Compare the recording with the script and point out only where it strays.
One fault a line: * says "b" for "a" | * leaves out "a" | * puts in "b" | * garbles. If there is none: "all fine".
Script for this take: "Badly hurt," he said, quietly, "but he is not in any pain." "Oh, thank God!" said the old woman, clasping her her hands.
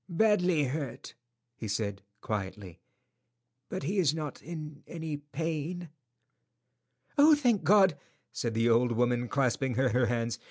all fine